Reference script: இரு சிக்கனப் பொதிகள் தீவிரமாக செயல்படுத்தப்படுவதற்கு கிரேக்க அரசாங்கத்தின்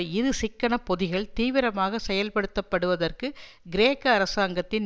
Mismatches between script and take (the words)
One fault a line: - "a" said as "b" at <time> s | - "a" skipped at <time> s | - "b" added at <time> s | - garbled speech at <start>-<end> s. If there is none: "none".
none